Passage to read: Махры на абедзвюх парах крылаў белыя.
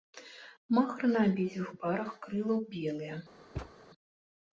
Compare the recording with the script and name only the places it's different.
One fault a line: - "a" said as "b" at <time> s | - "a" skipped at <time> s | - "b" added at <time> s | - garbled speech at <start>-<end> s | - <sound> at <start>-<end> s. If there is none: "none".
- thud at 3.6-3.7 s